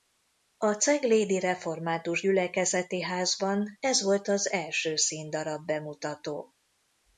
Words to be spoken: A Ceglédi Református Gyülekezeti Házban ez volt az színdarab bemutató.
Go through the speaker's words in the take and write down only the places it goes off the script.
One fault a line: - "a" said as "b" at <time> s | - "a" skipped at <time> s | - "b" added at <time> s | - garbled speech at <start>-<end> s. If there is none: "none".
- "első" added at 4.5 s